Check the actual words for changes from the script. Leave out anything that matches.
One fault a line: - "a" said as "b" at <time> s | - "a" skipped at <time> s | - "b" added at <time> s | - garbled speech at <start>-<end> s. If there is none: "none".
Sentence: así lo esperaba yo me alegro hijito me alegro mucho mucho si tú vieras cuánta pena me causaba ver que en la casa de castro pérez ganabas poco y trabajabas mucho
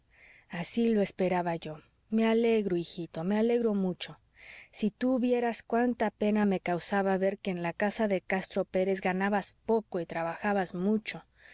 - "mucho" skipped at 4.2 s